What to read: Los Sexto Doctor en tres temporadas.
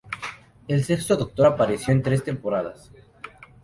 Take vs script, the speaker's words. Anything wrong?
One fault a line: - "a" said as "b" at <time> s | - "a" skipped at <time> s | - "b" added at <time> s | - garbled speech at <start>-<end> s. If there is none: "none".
- "Los" said as "El" at 0.7 s
- "apareció" added at 1.4 s